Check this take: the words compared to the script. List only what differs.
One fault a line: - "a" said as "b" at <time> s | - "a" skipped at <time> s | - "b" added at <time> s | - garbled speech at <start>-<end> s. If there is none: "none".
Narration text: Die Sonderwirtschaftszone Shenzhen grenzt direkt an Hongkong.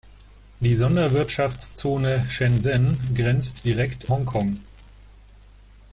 - "an" skipped at 4.1 s